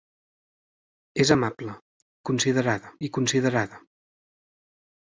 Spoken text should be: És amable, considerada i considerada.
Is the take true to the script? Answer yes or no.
yes